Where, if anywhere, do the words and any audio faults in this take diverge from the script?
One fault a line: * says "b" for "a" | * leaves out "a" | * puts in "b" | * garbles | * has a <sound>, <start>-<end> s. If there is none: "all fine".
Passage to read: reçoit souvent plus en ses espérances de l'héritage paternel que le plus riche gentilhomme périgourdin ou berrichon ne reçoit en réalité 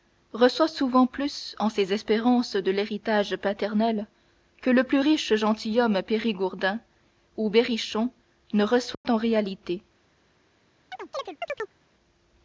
* has a dropout, 8.9-9.0 s
* has a chirp, 10.9-11.8 s